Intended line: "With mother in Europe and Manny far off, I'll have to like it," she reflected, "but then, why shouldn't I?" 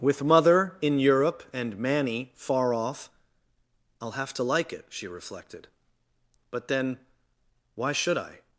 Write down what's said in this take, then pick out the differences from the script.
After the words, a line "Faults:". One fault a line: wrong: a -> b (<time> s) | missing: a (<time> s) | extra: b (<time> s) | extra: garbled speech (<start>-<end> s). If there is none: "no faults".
"With mother in Europe and Manny far off, I'll have to like it," she reflected, "but then, why should I?"
Faults:
wrong: shouldn't -> should (7.9 s)